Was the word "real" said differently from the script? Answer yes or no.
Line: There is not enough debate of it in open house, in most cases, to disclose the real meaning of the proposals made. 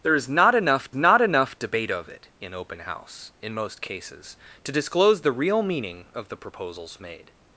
no